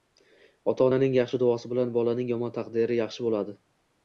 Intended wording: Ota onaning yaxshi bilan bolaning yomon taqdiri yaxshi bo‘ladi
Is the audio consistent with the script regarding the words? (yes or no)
no